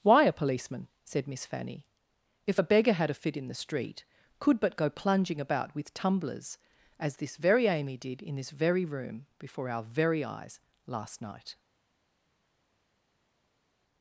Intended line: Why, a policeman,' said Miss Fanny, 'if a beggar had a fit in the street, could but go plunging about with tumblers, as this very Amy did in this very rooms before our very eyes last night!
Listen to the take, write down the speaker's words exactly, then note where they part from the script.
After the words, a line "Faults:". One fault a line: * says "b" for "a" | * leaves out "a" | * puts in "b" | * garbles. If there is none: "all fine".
Why, a policeman,' said Miss Fanny, 'if a beggar had a fit in the street, could but go plunging about with tumblers, as this very Amy did in this very room before our very eyes last night!
Faults:
* says "room" for "rooms"